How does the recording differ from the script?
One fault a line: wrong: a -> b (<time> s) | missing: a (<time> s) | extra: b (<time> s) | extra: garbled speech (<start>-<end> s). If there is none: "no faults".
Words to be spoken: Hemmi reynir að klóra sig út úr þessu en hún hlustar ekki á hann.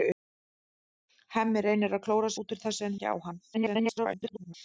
missing: sig (2.3 s)
missing: hún hlustar (3.0 s)
extra: garbled speech (3.5-4.5 s)